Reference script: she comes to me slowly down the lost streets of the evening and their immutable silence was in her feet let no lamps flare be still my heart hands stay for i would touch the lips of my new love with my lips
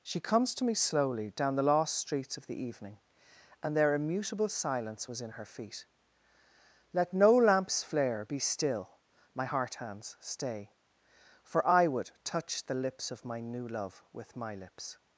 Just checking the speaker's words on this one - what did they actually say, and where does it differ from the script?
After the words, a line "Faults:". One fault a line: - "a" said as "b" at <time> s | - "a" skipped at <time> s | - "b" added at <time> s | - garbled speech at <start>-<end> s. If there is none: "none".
she comes to me slowly down the lost streets of the evening and their immutable silence was in her feet let no lamps flare be still my heart hands stay for i would touch the lips of my new love with my lips
Faults:
none